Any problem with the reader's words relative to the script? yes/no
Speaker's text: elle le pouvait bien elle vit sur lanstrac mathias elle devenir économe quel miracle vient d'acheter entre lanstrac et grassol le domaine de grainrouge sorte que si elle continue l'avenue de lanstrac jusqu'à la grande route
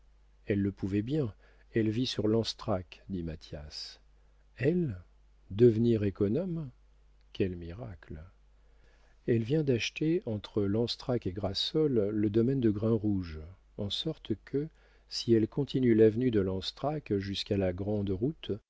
yes